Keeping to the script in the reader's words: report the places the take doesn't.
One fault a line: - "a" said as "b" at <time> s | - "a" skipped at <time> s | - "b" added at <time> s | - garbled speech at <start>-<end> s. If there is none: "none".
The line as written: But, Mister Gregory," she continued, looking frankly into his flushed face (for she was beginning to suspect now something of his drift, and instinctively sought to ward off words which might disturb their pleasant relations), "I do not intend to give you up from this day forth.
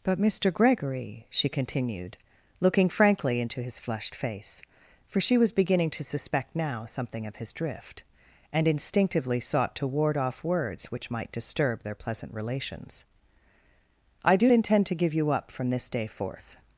- "not" skipped at 14.5 s